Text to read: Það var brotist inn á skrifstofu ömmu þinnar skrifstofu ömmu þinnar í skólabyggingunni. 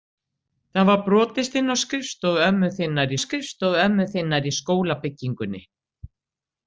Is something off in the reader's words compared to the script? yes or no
no